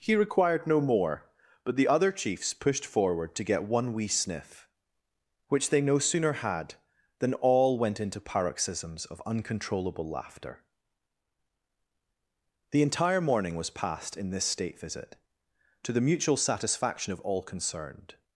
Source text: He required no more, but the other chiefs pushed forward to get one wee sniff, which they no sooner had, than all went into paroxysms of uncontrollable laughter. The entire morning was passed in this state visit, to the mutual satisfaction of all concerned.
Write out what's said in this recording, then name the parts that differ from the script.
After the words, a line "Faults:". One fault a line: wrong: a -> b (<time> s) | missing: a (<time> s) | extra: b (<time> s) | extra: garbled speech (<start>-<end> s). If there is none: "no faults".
He required no more, but the other chiefs pushed forward to get one wee sniff, which they no sooner had, than all went into paroxysms of uncontrollable laughter. The entire morning was passed in this state visit, to the mutual satisfaction of all concerned.
Faults:
no faults